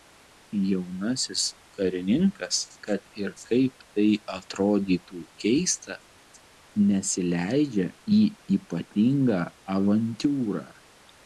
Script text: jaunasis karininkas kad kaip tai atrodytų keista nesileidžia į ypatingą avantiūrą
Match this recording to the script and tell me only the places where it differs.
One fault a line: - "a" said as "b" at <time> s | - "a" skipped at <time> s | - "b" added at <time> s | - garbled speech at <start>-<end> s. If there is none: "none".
- "ir" added at 3.2 s